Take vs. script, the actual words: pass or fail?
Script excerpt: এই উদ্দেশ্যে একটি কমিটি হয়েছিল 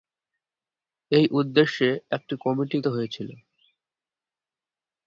pass